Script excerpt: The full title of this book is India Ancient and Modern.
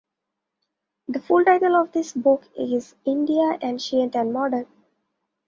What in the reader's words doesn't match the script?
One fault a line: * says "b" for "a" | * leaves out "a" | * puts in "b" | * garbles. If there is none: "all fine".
all fine